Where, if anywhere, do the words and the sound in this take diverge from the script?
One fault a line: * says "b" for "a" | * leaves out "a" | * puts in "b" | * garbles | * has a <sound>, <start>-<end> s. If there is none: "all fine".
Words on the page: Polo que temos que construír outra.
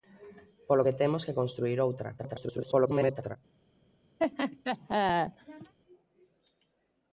* garbles
* has a laugh, 4.2-5.7 s